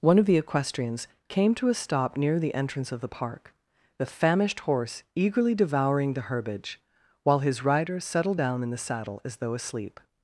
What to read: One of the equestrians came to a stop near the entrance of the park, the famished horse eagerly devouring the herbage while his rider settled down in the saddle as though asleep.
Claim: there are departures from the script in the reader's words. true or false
false